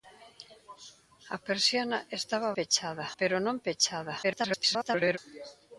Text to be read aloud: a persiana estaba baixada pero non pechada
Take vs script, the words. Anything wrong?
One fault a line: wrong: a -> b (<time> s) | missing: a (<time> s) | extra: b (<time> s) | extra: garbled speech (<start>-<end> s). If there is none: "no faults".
wrong: baixada -> pechada (2.6 s)
extra: garbled speech (4.2-5.2 s)